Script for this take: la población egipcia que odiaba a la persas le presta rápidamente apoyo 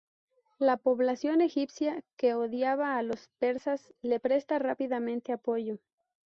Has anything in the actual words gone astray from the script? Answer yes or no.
yes